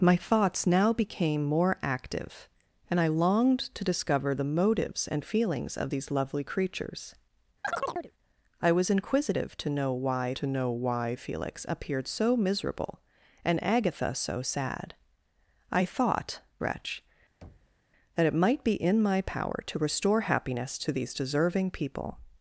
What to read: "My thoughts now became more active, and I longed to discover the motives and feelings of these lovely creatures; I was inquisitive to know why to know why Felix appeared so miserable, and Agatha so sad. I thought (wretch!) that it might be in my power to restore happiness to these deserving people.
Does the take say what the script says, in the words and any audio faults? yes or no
no